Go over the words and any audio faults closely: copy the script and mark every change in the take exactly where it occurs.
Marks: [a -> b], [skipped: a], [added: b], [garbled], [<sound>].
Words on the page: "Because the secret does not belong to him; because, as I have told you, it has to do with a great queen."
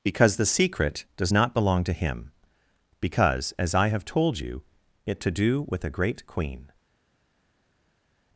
"Because the secret does not belong to him; because, as I have told you, it [skipped: has] to do with a great queen."